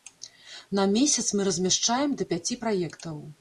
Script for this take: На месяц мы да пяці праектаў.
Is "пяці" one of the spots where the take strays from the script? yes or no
no